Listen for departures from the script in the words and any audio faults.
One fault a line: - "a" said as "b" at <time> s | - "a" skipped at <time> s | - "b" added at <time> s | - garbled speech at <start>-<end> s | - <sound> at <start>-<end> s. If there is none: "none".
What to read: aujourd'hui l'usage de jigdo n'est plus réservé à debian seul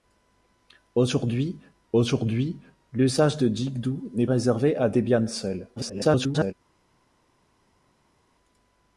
- "aujourd'hui" added at 1.9 s
- "plus" skipped at 4.3 s
- garbled speech at 5.8-6.5 s